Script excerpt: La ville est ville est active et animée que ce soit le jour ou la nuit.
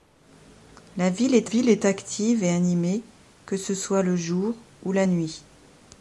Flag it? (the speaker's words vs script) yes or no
no